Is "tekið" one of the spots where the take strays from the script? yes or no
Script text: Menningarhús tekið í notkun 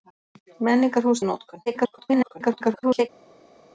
yes